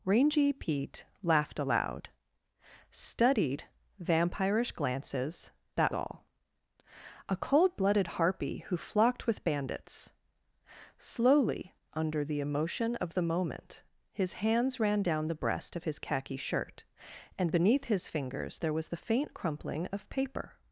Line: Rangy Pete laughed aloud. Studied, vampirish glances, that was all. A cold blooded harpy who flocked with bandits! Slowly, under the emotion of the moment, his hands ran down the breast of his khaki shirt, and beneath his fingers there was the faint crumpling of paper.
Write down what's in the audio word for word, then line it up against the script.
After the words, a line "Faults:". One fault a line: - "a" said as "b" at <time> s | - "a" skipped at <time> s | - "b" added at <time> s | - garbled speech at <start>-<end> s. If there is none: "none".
Rangy Pete laughed aloud. Studied, vampirish glances, that all. A cold blooded harpy who flocked with bandits! Slowly, under the emotion of the moment, his hands ran down the breast of his khaki shirt, and beneath his fingers there was the faint crumpling of paper.
Faults:
- "was" skipped at 5.9 s